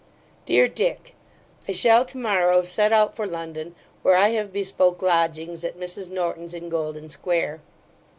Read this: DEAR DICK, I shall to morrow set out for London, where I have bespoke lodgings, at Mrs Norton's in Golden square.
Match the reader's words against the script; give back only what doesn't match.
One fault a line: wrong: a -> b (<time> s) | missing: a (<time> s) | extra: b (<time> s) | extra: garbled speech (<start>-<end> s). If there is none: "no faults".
no faults